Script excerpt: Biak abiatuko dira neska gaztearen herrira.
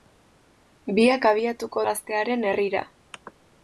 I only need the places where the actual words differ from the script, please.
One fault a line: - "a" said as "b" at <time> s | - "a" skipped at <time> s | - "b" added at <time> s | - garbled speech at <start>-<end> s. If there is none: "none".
- "dira neska" skipped at 1.8 s